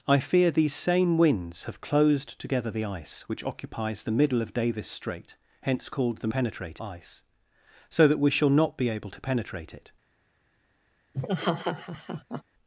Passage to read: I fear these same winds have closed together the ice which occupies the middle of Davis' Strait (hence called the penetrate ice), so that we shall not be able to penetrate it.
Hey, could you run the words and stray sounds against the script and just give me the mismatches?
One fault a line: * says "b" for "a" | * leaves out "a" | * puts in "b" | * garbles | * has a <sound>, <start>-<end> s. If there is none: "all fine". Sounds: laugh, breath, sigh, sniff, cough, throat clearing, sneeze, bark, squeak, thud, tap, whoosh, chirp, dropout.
* has a laugh, 11.1-12.4 s